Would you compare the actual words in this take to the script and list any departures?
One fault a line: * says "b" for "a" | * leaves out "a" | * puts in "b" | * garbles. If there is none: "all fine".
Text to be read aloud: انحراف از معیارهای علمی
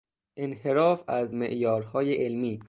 all fine